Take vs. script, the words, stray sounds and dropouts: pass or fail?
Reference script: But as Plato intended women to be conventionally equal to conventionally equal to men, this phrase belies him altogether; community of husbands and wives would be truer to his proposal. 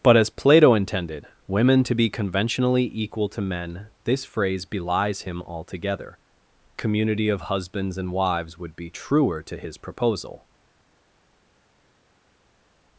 fail